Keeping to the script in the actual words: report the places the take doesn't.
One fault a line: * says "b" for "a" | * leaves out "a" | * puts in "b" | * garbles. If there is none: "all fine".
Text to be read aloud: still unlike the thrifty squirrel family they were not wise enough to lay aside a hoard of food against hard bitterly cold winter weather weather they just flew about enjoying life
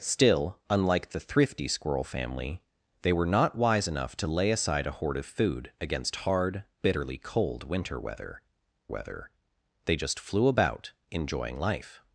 all fine